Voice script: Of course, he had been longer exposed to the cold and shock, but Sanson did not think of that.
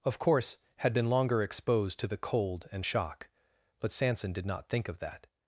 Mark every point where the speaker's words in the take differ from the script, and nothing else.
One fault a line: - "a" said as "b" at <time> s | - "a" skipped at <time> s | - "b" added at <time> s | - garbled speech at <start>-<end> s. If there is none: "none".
- "he" skipped at 0.6 s